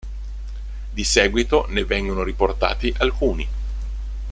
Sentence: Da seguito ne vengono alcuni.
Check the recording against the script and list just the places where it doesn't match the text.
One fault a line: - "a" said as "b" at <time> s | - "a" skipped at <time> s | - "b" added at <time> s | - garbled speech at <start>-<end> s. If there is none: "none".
- "Da" said as "Di" at 0.9 s
- "riportati" added at 2.2 s